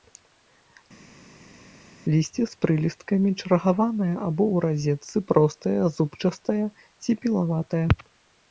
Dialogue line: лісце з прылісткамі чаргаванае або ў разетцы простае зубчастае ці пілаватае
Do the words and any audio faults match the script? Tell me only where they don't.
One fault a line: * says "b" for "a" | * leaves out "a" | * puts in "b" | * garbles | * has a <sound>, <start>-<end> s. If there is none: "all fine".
all fine